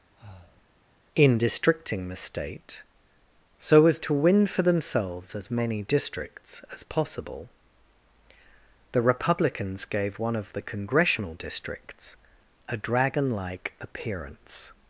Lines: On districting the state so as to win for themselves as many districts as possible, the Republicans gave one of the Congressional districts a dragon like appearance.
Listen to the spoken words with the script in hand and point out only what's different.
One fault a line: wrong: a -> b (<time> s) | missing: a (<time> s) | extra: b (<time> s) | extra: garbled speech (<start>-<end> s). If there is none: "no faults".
wrong: On -> In (1.1 s)